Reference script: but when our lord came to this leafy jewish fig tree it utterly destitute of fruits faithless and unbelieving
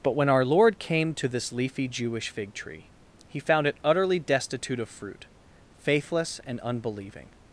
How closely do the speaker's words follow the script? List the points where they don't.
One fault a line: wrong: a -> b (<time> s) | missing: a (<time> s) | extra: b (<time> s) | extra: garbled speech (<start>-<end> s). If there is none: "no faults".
extra: he found (3.3 s)
wrong: fruits -> fruit (4.9 s)